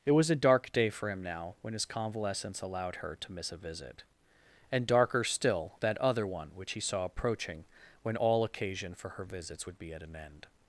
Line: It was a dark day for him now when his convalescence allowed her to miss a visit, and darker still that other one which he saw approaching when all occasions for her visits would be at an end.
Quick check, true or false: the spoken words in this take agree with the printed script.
false